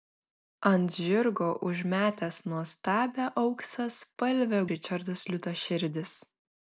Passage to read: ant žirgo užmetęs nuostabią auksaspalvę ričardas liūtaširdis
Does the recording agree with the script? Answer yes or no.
yes